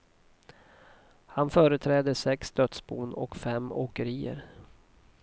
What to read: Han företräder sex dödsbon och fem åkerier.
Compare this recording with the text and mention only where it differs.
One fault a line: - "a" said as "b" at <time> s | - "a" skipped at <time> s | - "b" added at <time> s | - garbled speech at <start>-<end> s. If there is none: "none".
none